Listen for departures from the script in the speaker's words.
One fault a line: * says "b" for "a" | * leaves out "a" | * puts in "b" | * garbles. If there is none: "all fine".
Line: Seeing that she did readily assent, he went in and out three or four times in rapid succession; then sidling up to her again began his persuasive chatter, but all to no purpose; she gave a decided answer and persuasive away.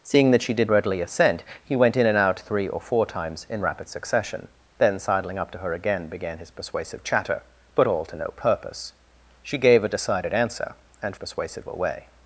all fine